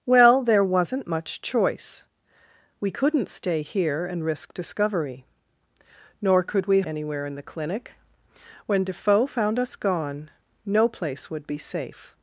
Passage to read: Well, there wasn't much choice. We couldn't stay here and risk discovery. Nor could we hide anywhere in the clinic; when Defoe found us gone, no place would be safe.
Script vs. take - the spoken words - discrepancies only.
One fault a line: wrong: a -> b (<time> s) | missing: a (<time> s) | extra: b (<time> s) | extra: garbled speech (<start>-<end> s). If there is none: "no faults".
missing: hide (6.8 s)